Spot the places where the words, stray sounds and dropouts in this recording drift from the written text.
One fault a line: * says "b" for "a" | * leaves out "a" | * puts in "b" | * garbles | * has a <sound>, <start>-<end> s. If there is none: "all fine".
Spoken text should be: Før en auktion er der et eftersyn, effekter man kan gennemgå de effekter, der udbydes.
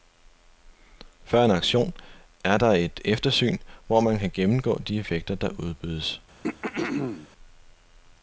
* says "hvor" for "effekter"
* has a throat clearing, 6.4-7.3 s